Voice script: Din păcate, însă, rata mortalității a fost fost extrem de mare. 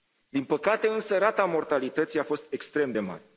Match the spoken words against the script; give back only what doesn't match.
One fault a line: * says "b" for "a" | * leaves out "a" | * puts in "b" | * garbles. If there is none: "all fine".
* leaves out "fost"